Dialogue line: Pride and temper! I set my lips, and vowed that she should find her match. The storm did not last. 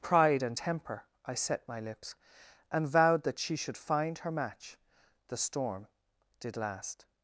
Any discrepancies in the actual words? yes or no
yes